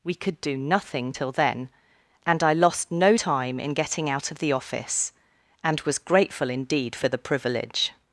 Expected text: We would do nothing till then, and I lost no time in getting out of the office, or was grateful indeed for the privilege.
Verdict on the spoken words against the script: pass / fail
fail